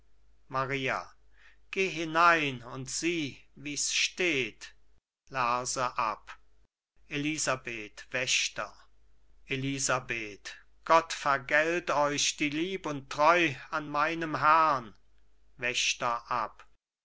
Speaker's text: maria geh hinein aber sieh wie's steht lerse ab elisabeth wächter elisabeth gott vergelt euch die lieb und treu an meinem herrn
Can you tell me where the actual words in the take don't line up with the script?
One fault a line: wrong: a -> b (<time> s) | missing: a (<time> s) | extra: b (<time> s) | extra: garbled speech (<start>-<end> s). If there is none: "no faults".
wrong: aber -> und (2.6 s)